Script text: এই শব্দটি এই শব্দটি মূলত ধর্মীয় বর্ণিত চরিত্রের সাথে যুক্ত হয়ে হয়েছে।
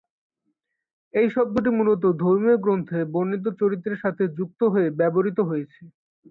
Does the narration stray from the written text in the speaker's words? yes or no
yes